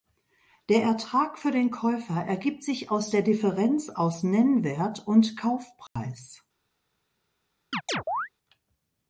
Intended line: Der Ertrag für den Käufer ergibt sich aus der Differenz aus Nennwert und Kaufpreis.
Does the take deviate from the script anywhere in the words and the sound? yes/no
yes